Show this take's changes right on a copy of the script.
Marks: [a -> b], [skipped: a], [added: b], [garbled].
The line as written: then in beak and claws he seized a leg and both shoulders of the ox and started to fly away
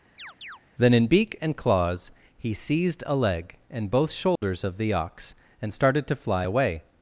then in beak and claws he seized a leg and both shoulders of the ox and started to fly away